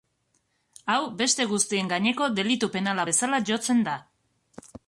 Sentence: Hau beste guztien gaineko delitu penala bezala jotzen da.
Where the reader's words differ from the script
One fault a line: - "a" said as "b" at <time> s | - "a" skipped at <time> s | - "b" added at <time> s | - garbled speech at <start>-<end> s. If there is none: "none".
none